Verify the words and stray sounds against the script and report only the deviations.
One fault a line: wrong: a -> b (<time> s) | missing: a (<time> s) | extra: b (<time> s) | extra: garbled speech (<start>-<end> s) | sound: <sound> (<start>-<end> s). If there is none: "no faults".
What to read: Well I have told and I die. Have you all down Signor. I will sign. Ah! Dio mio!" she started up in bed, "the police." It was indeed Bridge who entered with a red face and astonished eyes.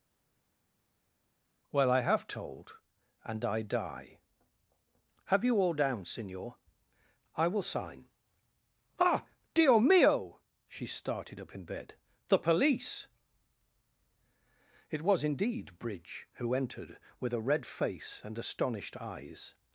no faults